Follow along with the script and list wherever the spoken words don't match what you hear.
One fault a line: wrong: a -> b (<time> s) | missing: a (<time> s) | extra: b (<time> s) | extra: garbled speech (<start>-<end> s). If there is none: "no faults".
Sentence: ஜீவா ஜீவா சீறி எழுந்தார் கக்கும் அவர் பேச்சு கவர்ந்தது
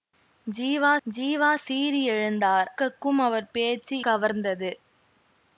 no faults